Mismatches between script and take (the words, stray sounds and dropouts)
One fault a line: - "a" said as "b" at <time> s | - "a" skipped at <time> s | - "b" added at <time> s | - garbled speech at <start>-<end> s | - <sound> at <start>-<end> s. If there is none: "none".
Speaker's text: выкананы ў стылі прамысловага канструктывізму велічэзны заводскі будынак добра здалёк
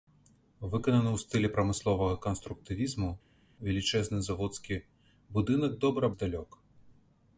none